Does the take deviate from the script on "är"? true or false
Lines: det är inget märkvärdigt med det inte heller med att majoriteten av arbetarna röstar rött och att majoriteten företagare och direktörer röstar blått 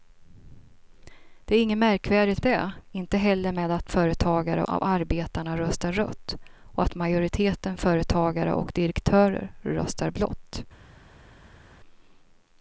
false